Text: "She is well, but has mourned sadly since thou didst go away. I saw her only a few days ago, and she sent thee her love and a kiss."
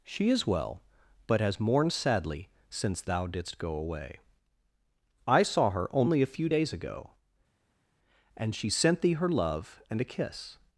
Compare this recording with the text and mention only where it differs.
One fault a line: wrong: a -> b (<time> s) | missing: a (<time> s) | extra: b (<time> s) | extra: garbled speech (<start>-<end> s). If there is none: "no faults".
no faults